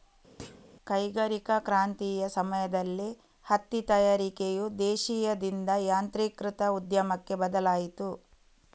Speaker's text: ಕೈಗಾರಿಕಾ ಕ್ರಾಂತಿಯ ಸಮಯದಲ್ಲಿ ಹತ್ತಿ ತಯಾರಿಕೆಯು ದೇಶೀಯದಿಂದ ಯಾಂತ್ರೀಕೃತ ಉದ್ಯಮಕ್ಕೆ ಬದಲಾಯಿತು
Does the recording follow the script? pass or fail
pass